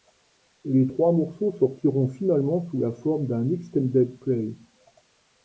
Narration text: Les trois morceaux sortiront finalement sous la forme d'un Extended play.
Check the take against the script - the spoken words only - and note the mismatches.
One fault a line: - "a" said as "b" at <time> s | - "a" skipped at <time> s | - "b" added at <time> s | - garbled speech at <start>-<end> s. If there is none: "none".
none